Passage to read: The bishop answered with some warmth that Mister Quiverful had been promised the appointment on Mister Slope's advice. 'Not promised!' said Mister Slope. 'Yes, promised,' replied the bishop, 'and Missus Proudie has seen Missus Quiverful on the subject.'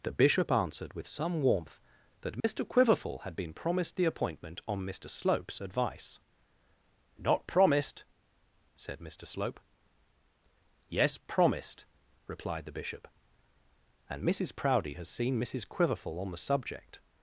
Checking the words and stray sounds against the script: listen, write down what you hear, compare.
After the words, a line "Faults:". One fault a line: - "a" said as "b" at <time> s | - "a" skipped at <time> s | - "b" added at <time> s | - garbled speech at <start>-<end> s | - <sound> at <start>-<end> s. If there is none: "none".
The bishop answered with some warmth that Mister Quiverful had been promised the appointment on Mister Slope's advice. 'Not promised!' said Mister Slope. 'Yes, promised,' replied the bishop, 'and Missus Proudie has seen Missus Quiverful on the subject.'
Faults:
- dropout at 2.4-2.4 s